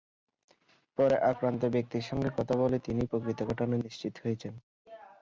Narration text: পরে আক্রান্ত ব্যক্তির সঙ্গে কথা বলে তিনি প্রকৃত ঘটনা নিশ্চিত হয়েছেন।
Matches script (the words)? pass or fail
pass